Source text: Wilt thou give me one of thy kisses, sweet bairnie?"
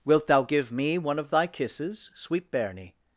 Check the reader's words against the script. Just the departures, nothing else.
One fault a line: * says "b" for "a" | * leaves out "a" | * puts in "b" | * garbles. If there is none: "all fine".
all fine